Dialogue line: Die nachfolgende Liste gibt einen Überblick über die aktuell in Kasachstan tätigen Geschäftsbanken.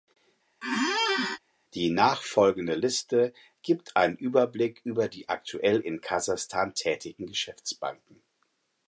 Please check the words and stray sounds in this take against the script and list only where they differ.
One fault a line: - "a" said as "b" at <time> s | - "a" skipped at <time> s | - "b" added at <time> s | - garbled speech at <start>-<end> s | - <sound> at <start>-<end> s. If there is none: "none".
- squeak at 0.6-1.4 s